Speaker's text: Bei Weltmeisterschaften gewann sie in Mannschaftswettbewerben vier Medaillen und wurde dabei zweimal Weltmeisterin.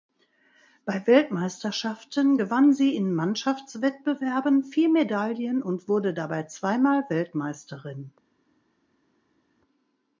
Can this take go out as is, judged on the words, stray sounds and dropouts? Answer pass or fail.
pass